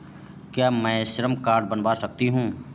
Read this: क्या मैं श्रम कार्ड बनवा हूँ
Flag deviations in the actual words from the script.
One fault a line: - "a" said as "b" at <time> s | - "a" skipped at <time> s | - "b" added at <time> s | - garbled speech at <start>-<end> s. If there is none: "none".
- "सकती" added at 1.9 s